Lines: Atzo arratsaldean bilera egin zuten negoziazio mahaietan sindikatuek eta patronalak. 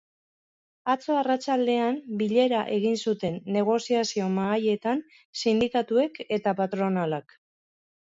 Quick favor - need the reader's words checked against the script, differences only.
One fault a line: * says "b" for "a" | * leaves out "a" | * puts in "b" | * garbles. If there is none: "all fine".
all fine